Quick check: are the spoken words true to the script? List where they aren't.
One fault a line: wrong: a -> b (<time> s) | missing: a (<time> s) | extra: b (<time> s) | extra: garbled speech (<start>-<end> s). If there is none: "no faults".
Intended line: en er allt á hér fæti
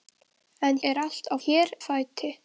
no faults